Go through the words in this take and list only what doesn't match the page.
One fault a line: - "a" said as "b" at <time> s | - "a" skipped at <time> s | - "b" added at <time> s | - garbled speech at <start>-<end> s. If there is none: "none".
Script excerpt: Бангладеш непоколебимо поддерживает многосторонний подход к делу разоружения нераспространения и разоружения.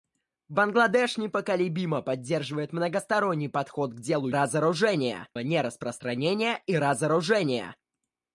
none